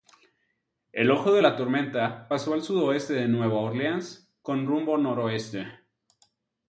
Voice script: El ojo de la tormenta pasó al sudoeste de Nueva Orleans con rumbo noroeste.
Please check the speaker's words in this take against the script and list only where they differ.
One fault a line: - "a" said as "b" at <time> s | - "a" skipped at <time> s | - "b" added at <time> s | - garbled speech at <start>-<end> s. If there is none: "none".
none